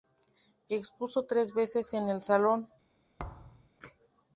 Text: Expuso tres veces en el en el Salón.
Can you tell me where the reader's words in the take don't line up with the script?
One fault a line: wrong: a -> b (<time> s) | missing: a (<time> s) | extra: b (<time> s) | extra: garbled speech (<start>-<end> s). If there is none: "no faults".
missing: en el (2.2 s)